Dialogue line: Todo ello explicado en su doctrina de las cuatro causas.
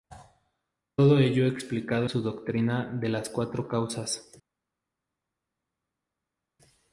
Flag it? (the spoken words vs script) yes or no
yes